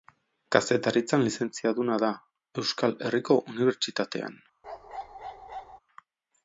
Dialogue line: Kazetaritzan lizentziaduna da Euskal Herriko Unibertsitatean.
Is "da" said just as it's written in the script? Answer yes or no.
yes